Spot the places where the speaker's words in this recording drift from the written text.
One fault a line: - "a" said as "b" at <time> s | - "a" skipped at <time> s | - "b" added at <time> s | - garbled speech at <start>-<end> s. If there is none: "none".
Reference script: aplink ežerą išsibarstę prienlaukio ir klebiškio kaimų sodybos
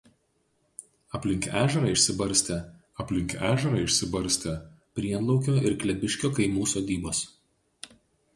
- "aplink ežerą išsibarstę" added at 3.0 s